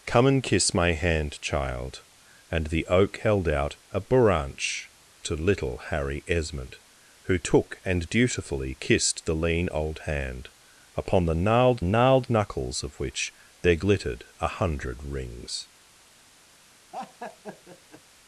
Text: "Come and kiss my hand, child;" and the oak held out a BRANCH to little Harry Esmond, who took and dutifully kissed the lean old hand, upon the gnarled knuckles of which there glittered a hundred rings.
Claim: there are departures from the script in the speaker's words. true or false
true